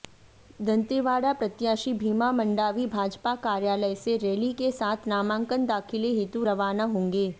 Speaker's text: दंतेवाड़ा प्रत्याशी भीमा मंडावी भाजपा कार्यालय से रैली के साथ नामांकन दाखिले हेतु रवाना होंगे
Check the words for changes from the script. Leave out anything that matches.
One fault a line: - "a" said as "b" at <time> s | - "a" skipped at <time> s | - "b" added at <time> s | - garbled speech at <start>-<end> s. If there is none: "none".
none